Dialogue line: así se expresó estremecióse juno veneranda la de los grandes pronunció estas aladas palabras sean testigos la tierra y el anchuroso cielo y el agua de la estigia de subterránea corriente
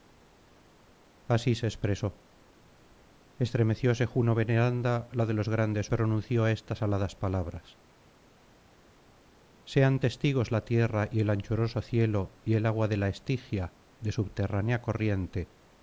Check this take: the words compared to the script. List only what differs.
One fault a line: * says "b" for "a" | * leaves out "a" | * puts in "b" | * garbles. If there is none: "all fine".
all fine